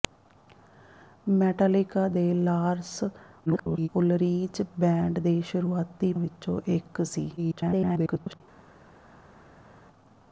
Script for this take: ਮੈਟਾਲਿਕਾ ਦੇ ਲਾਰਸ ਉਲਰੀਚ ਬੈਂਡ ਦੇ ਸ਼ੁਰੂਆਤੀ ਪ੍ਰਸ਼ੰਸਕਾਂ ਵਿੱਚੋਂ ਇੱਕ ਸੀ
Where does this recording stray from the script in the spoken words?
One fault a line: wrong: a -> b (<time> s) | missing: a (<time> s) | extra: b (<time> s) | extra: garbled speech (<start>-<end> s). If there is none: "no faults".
extra: garbled speech (3.5-3.9 s)
missing: ਪ੍ਰਸ਼ੰਸਕਾਂ (6.1 s)
extra: garbled speech (7.4-8.4 s)